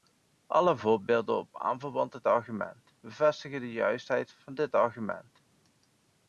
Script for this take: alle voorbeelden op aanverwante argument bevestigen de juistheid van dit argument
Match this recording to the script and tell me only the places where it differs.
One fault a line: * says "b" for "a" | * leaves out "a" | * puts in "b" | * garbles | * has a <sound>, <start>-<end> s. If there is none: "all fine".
all fine